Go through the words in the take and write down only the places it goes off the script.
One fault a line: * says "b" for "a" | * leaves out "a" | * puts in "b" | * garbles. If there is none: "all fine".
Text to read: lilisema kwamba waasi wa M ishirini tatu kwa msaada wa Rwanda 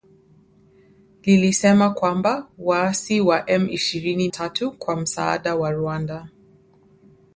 all fine